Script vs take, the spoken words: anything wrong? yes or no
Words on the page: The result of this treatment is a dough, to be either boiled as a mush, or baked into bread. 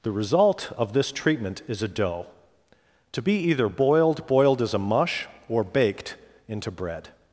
yes